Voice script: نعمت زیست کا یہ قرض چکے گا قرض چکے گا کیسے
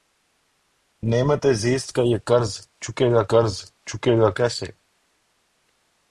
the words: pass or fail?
pass